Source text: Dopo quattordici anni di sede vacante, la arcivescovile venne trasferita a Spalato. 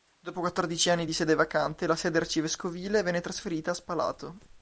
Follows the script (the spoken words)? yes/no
no